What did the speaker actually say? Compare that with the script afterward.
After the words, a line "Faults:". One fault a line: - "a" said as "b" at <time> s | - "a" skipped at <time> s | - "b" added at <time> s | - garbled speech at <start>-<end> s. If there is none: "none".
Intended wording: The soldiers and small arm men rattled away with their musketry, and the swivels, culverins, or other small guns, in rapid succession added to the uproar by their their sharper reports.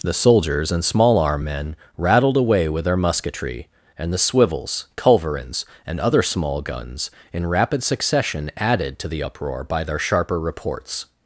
The soldiers and small arm men rattled away with their musketry, and the swivels, culverins, and other small guns, in rapid succession added to the uproar by their sharper reports.
Faults:
- "or" said as "and" at 5.8 s
- "their" skipped at 10.0 s